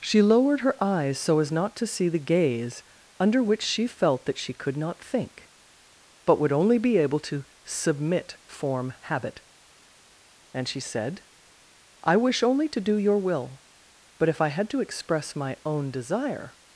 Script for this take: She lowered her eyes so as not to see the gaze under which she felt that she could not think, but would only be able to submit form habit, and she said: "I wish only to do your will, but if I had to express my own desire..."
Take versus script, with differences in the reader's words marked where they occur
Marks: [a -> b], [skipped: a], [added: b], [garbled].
She lowered her eyes so as not to see the gaze under which she felt that she could not think, but would only be able to submit form habit, and she said: "I wish only to do your will, but if I had to express my own desire..."